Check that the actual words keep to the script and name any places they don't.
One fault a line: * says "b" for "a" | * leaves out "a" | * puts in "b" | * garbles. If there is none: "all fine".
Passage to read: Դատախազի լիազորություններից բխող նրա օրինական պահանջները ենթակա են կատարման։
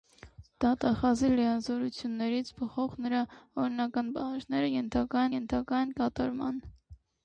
* puts in "ենթակա"